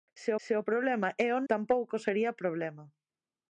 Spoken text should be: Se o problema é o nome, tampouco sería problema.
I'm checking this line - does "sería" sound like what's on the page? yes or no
yes